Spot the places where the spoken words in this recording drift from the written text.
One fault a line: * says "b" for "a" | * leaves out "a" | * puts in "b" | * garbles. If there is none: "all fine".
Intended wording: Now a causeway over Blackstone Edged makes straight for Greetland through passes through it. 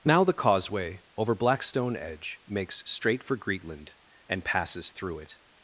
* says "the" for "a"
* says "Edge" for "Edged"
* says "and" for "through"